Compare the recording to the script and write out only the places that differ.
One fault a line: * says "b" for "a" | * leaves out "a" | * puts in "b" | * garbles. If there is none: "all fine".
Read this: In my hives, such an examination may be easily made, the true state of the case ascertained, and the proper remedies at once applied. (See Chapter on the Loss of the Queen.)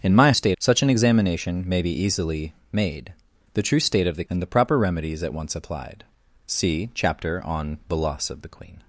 * says "state" for "hives"
* leaves out "case ascertained"